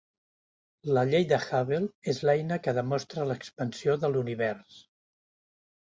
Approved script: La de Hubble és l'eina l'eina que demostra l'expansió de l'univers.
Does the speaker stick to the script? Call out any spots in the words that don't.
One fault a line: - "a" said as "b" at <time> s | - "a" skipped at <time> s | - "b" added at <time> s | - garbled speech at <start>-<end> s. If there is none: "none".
- "llei" added at 1.1 s
- "l'eina" skipped at 2.6 s